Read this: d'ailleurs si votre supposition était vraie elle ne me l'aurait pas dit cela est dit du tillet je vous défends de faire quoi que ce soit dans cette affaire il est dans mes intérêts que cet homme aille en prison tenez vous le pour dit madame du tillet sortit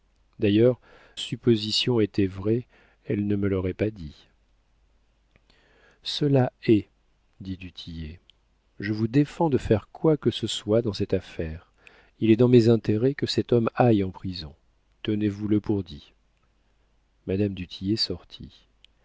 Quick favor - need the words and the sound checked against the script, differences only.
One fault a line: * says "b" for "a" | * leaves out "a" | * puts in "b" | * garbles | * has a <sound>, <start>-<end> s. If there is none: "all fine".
* leaves out "si votre"